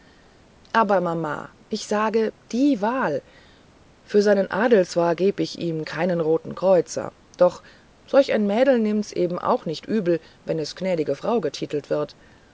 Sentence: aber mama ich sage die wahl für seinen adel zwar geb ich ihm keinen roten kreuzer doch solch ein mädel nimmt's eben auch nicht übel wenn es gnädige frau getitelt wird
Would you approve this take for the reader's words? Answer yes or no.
yes